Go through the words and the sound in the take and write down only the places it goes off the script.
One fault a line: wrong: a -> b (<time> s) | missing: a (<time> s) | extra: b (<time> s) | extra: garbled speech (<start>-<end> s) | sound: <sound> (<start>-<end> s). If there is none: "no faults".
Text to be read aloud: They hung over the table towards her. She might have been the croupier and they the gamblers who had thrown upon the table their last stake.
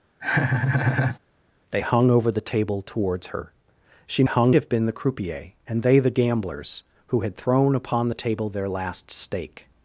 sound: laugh (0.2-1.2 s)
wrong: might -> hung (4.3 s)